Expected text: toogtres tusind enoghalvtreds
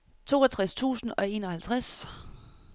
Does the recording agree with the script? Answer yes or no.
no